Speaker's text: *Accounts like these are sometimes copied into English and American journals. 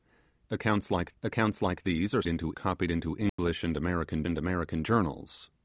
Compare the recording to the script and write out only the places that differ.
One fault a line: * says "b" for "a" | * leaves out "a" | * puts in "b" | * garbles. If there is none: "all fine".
* puts in "accounts like"
* says "into" for "sometimes"
* puts in "and American"